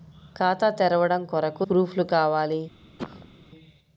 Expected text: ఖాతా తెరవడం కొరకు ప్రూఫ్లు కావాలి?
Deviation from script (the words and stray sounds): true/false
true